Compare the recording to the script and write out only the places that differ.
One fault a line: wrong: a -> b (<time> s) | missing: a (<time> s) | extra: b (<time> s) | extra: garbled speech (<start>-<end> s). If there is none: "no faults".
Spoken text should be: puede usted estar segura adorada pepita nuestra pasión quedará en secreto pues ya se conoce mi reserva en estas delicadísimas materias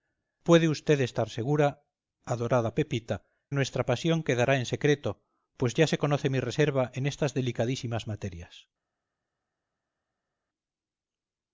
no faults